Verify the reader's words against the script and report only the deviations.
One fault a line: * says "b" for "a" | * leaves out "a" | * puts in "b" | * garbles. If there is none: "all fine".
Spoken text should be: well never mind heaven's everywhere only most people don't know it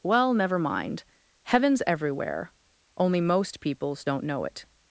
* says "peoples" for "people"